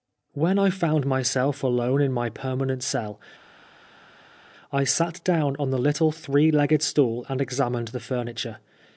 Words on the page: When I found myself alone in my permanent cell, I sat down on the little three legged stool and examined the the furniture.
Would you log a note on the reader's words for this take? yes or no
yes